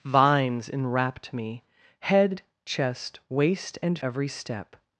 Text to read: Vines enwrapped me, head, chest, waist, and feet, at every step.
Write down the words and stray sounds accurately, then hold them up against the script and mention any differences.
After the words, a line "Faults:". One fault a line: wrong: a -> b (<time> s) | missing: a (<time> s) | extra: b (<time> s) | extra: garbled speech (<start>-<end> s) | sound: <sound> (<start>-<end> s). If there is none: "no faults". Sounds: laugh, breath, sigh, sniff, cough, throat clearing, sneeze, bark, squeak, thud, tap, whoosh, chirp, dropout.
Vines enwrapped me, head, chest, waist, and every step.
Faults:
missing: feet at (4.0 s)